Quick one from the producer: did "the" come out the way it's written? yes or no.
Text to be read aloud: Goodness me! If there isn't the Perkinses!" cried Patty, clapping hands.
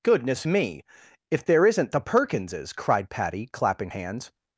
yes